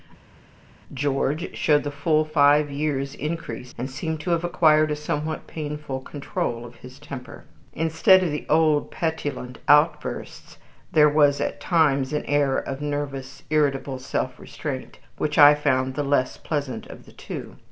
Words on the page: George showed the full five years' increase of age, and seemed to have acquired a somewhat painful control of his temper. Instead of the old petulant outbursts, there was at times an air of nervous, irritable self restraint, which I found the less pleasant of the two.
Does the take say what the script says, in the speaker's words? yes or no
no